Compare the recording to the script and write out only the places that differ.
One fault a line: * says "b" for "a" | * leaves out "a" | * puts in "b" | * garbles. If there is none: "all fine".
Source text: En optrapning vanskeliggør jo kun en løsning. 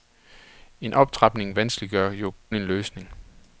* leaves out "kun"